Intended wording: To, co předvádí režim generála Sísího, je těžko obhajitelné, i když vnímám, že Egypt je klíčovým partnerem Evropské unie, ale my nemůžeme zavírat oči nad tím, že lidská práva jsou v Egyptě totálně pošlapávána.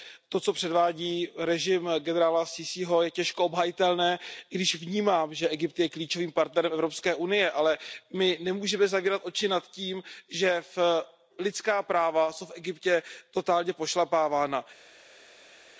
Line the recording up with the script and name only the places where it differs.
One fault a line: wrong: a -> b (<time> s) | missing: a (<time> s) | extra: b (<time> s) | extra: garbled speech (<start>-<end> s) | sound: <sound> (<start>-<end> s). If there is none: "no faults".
no faults